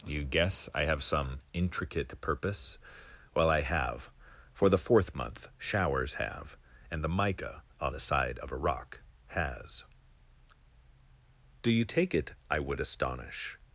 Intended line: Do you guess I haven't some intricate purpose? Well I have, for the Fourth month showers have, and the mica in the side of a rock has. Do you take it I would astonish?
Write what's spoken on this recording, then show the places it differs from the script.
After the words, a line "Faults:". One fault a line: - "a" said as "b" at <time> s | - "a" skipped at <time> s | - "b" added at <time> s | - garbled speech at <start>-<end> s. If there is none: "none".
Do you guess I have some intricate purpose? Well I have, for the Fourth month showers have, and the mica on the side of a rock has. Do you take it I would astonish?
Faults:
- "haven't" said as "have" at 0.8 s
- "in" said as "on" at 7.8 s